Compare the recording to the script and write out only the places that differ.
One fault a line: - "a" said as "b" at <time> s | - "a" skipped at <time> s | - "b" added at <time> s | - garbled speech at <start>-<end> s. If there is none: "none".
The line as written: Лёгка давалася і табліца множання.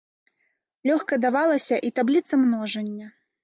none